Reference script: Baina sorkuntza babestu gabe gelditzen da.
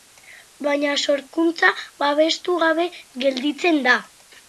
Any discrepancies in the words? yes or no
no